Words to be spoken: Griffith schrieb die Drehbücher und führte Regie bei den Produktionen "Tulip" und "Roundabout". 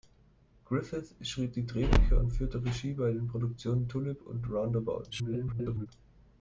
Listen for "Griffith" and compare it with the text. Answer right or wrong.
right